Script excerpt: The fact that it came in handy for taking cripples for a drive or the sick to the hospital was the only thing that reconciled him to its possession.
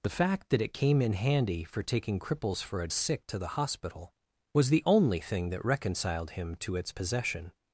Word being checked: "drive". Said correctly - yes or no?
no